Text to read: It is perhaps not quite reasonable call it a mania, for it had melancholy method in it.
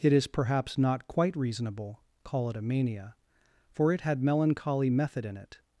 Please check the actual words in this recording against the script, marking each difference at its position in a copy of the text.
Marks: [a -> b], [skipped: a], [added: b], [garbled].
It is perhaps not quite reasonable call it a mania, for it had melancholy method in it.